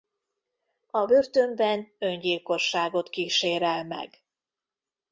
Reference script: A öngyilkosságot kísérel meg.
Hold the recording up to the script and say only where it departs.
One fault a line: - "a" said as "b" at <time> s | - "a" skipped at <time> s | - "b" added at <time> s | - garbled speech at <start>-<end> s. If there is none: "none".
- "börtönben" added at 1.0 s